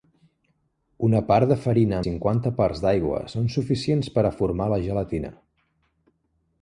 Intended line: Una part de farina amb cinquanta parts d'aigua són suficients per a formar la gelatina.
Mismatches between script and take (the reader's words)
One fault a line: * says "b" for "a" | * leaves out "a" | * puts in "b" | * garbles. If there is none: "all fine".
* leaves out "amb"